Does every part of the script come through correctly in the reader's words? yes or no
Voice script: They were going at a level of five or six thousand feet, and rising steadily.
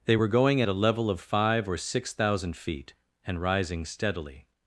yes